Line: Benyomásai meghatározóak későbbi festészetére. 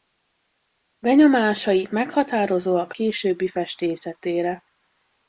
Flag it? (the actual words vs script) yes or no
no